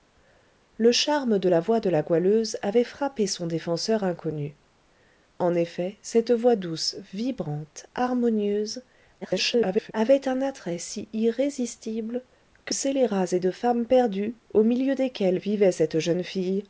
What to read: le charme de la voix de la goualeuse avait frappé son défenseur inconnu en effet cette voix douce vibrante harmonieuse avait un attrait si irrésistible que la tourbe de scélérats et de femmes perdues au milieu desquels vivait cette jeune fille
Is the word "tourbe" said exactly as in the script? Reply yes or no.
no